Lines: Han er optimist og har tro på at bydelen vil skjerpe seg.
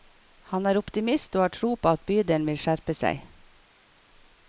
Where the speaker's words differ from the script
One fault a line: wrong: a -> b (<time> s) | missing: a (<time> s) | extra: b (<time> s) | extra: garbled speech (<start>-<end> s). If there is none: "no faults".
no faults